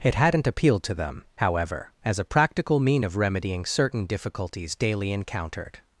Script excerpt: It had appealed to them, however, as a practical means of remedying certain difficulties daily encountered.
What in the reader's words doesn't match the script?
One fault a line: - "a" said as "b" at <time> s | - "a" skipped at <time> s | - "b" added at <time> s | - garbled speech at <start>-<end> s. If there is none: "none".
- "had" said as "hadn't" at 0.1 s
- "means" said as "mean" at 2.8 s